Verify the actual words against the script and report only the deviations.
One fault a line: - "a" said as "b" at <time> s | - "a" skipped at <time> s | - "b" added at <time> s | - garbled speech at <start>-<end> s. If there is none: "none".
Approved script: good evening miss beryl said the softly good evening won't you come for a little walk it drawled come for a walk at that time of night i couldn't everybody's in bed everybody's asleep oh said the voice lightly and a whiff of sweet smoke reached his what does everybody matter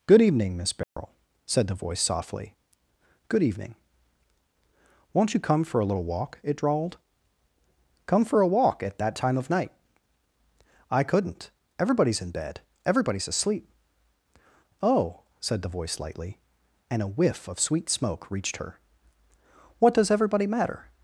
- "voice" added at 1.8 s
- "his" said as "her" at 18.6 s